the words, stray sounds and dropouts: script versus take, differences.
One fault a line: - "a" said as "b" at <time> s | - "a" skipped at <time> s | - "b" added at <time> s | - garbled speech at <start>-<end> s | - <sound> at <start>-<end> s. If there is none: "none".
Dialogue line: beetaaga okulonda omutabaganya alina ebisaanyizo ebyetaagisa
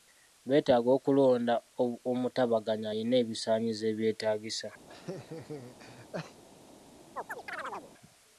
- laugh at 4.9-6.4 s
- chirp at 7.2-7.9 s